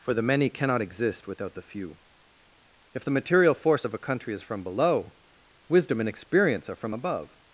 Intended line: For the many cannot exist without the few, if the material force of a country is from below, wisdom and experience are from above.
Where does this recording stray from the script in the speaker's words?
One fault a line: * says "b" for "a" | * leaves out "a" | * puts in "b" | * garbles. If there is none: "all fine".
all fine